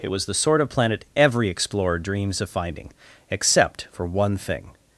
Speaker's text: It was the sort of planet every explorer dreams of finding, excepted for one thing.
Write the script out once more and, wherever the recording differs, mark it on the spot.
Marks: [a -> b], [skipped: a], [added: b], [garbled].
It was the sort of planet every explorer dreams of finding, [excepted -> except] for one thing.